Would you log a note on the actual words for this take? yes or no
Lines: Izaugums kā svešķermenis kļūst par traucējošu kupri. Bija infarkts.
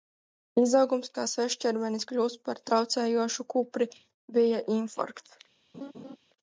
no